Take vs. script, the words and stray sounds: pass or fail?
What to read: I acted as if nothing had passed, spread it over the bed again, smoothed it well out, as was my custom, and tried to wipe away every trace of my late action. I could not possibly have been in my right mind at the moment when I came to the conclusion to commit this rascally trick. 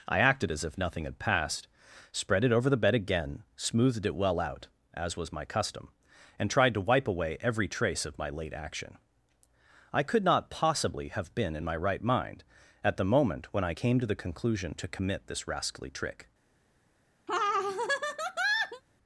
fail